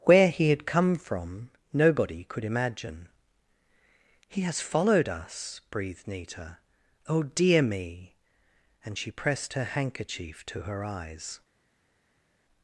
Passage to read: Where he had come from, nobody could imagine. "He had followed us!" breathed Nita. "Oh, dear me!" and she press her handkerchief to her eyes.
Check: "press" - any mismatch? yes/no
yes